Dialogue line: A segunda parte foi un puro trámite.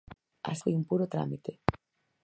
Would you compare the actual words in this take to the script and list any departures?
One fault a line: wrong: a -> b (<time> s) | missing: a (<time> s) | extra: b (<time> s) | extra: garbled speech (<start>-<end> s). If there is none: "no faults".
missing: segunda parte (0.5 s)